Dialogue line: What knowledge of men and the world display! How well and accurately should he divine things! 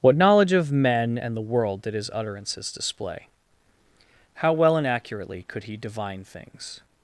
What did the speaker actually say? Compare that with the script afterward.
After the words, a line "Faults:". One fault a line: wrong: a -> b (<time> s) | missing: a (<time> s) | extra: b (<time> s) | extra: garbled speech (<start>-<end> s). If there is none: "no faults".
What knowledge of men and the world did his utterances display! How well and accurately could he divine things!
Faults:
extra: did his utterances (1.8 s)
wrong: should -> could (5.5 s)